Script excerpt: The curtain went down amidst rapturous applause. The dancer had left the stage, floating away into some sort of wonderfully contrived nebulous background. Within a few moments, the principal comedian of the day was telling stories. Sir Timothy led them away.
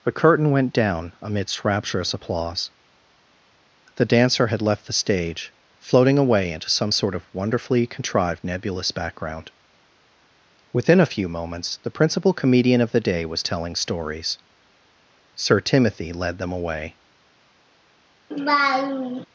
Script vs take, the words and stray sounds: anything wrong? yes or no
yes